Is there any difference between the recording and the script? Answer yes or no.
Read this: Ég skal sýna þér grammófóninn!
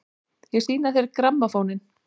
yes